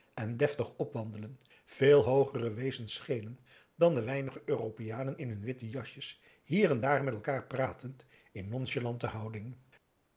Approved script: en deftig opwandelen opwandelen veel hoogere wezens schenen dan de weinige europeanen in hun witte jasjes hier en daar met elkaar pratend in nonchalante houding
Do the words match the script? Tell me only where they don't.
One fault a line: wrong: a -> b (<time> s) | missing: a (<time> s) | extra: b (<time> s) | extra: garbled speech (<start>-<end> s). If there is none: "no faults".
missing: opwandelen (1.4 s)